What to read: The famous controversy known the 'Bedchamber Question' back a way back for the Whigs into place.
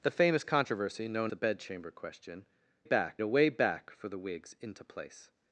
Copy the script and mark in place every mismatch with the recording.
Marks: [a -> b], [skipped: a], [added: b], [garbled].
The famous controversy known the 'Bedchamber Question' back a way back for the Whigs into place.